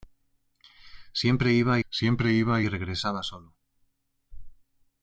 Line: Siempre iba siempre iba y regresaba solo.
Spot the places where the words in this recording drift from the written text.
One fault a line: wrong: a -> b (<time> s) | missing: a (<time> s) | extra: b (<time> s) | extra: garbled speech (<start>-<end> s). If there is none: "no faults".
no faults